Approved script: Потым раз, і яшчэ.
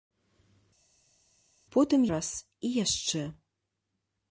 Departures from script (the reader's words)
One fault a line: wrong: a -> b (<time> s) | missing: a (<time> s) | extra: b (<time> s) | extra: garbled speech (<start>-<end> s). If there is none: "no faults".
no faults